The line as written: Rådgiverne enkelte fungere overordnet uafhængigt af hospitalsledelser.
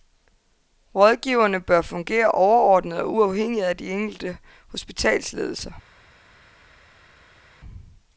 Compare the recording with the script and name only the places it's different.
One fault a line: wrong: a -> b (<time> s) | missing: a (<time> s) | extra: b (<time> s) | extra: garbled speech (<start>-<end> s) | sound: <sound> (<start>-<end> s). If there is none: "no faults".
wrong: enkelte -> bør (1.6 s)
extra: og (3.0 s)
extra: de enkelte (3.8 s)